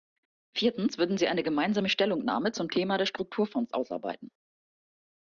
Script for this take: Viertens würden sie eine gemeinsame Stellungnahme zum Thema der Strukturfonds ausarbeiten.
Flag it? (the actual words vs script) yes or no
no